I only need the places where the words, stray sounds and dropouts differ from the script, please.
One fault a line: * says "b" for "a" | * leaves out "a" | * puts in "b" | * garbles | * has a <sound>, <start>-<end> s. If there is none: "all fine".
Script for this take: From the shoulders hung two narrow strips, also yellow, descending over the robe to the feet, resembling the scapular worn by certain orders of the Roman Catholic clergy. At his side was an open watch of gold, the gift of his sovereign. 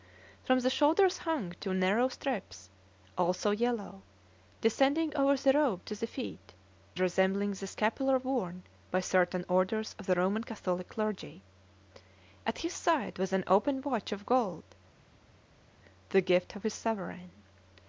all fine